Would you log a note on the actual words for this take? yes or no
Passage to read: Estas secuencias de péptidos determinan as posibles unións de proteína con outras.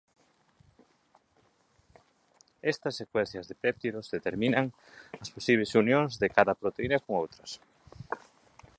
yes